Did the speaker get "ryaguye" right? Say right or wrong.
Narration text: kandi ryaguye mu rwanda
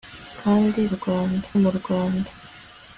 wrong